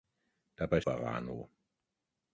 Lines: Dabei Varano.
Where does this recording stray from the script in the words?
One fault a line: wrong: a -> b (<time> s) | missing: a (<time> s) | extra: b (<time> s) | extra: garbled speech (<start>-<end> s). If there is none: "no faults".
no faults